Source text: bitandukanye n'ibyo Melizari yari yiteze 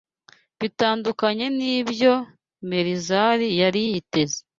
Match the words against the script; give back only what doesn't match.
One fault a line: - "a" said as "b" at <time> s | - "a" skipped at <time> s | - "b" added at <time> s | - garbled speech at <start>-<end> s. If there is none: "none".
none